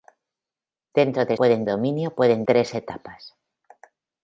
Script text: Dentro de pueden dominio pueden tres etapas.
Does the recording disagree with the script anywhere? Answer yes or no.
no